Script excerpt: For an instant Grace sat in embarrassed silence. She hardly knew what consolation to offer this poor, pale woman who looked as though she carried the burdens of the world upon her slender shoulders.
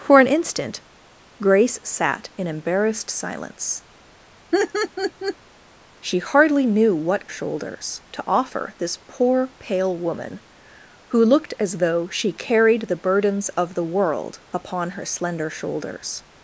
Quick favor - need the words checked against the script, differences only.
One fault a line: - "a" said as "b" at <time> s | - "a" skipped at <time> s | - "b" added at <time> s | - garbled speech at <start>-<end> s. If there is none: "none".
- "consolation" said as "shoulders" at 7.3 s